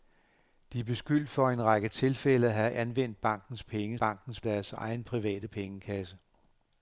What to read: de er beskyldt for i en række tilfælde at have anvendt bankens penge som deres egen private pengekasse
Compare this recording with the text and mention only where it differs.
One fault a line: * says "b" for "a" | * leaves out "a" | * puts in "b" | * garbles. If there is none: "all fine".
* says "bankens" for "som"